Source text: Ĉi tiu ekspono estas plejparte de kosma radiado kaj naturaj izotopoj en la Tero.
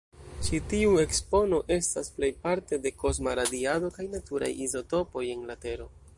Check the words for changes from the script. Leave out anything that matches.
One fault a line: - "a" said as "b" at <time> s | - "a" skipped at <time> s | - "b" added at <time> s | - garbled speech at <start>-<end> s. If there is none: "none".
none